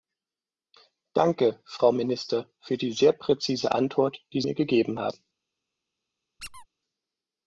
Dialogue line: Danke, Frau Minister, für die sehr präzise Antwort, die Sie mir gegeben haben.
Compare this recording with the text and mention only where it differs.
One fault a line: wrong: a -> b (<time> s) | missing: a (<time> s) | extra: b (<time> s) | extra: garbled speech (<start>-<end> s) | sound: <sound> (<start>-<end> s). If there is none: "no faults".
missing: Sie (4.4 s)
sound: squeak (6.4-6.7 s)